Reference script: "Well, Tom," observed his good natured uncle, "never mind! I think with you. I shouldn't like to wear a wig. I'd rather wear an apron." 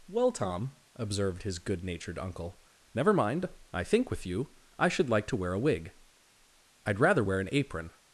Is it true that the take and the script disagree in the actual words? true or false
true